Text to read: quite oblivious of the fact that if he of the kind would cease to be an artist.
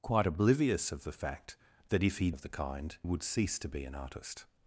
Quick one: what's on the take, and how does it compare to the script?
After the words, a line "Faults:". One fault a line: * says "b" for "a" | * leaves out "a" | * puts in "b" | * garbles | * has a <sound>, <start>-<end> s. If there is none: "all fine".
quite oblivious of the fact that if he of the kind would cease to be an artist.
Faults:
all fine